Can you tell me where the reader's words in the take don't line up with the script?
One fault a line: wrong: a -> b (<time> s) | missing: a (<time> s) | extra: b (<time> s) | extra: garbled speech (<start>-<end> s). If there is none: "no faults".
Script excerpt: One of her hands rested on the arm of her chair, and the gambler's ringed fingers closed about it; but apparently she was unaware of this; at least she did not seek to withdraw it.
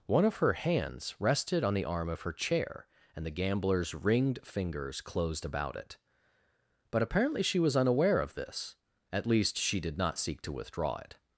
no faults